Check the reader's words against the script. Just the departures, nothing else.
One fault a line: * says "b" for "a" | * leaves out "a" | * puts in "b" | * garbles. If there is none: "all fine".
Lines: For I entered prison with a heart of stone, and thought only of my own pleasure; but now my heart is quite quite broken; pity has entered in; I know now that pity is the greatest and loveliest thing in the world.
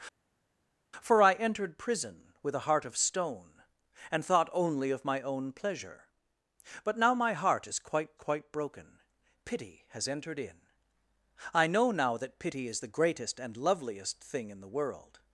all fine